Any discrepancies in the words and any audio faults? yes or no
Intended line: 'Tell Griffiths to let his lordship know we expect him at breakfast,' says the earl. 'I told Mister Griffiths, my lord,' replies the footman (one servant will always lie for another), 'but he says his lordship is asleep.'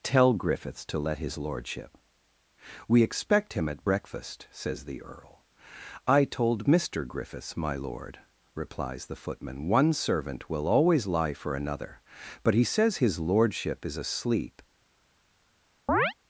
yes